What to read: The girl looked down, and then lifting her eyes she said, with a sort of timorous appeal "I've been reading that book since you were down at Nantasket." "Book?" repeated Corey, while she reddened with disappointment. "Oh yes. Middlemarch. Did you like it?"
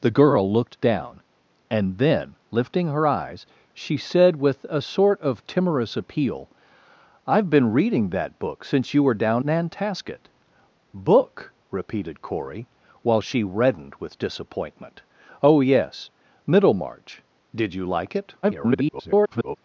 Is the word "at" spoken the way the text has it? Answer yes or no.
no